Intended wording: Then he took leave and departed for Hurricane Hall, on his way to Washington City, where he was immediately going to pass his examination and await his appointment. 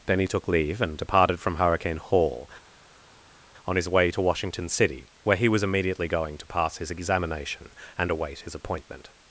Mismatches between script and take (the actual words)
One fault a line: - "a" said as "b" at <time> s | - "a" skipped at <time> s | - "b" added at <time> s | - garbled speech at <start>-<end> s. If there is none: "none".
- "for" said as "from" at 1.4 s